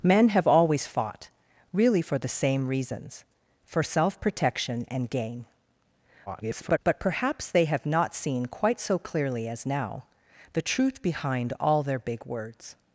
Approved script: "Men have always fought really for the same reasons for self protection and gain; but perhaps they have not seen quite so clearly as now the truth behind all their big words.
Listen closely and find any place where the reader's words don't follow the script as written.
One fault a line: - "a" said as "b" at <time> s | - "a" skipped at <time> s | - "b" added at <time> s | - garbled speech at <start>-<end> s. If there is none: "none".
- garbled speech at 6.3-6.8 s